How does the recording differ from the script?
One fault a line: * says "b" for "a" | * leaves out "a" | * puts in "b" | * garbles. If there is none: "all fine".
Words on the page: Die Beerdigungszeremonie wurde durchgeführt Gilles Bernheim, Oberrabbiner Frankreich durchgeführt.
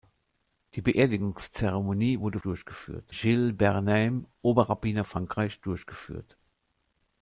all fine